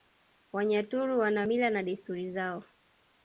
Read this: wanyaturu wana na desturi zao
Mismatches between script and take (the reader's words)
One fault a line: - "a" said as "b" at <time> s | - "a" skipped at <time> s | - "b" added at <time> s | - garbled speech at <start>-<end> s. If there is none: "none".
- "mila" added at 1.4 s